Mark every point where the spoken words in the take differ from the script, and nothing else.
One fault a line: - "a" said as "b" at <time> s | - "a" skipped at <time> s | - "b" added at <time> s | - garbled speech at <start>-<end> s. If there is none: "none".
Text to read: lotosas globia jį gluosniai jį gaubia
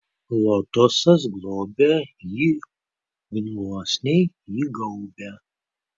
none